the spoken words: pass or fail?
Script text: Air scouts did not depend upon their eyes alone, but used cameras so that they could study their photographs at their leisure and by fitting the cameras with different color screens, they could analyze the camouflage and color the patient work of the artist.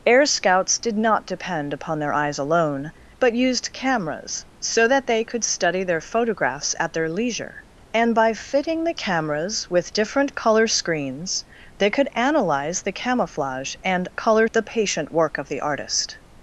pass